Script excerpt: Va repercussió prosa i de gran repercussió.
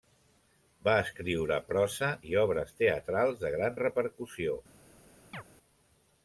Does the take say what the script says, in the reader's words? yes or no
no